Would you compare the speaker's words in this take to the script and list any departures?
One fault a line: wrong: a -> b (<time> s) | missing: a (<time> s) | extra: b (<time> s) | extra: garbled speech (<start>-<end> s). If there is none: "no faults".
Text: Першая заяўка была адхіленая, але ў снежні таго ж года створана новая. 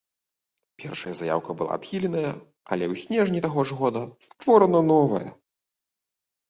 no faults